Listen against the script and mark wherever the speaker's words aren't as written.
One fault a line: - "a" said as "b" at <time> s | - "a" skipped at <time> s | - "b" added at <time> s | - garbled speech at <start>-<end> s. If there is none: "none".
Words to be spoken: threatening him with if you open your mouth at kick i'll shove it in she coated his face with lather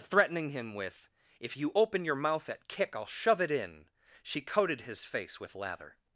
none